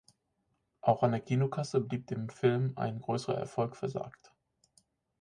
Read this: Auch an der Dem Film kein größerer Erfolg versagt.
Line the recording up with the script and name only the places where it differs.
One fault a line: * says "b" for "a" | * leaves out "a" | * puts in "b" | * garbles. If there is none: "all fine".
* puts in "Kinokasse blieb"
* says "ein" for "kein"